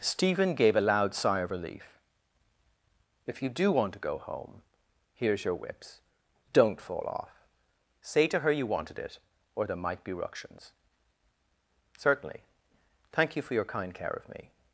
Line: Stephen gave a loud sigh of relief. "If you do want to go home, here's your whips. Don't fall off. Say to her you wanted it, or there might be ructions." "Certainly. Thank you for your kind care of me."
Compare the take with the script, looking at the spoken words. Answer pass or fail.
pass